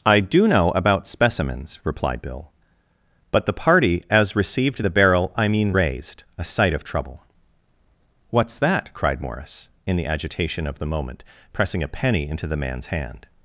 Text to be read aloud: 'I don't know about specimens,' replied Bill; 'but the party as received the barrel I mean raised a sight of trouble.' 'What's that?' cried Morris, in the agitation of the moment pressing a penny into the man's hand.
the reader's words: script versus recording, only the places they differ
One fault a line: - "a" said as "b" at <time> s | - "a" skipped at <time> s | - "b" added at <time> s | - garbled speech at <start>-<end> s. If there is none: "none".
- "don't" said as "do" at 0.2 s